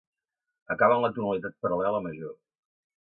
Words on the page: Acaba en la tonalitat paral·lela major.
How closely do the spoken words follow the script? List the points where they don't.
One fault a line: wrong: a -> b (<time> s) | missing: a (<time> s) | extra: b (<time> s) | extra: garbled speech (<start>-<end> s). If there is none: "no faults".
no faults